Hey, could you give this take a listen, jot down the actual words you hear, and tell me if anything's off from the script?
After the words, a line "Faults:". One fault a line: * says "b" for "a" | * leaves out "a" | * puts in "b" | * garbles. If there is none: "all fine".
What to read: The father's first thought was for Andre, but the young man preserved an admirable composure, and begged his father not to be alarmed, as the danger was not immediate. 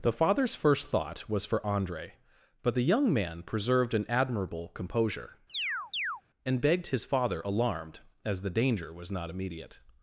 The father's first thought was for Andre, but the young man preserved an admirable composure, and begged his father alarmed, as the danger was not immediate.
Faults:
* leaves out "not to be"